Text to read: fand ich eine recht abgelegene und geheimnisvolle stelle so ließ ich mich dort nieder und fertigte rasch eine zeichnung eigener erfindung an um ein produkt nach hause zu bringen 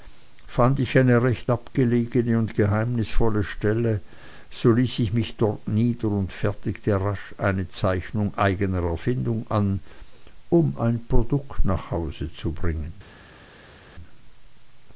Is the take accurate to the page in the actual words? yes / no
yes